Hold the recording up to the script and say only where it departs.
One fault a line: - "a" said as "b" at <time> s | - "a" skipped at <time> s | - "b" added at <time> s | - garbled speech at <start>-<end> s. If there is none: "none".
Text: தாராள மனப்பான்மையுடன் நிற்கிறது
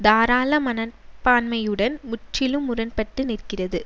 - "முற்றிலும் முரண்பட்டு" added at 2.0 s